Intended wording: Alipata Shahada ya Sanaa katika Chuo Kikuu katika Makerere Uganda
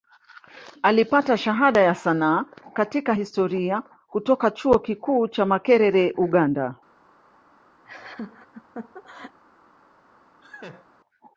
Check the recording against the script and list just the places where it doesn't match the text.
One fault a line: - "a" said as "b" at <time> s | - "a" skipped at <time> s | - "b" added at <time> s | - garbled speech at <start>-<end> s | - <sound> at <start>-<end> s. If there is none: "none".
- "Historia kutoka" added at 3.1 s
- "katika" said as "cha" at 5.3 s
- laugh at 7.8-9.4 s
- laugh at 10.4-10.9 s